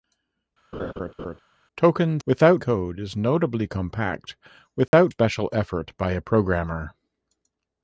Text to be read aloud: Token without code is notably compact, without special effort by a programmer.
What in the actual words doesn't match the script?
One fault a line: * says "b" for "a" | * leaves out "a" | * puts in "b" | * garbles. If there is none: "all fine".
all fine